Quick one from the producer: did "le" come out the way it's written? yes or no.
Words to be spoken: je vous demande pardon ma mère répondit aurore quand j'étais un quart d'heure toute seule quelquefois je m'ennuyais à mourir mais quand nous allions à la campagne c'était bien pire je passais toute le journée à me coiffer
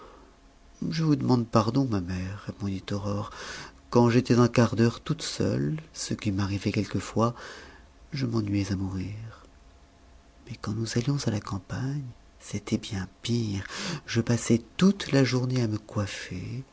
no